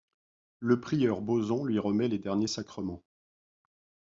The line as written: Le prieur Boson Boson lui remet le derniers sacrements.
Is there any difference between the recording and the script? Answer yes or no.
yes